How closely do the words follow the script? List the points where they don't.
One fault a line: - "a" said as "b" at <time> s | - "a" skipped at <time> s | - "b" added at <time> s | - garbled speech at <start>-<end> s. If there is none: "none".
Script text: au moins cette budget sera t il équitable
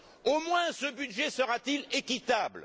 - "cette" said as "ce" at 0.7 s